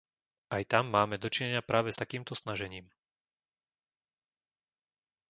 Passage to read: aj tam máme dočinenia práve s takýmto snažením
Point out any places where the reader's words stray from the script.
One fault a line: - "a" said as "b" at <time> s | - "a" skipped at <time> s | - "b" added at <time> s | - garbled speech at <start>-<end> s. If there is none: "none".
none